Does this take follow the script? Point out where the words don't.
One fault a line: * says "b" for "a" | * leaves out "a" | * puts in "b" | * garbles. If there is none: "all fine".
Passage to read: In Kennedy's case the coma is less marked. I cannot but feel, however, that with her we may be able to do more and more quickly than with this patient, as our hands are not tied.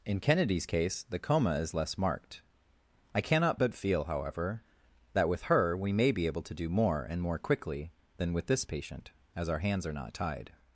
all fine